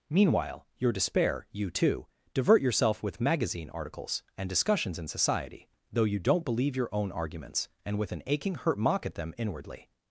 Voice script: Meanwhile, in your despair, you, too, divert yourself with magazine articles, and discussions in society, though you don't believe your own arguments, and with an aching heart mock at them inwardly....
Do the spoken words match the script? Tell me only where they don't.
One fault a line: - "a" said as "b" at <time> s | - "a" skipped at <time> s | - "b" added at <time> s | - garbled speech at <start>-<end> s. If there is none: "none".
- "in" skipped at 0.7 s
- "heart" said as "hurt" at 8.6 s